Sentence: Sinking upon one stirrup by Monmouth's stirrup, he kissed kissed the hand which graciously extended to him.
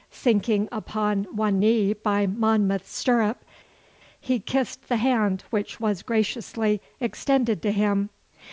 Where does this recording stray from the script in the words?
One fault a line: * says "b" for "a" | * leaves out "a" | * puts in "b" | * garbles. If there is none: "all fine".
* says "knee" for "stirrup"
* leaves out "kissed"
* puts in "was"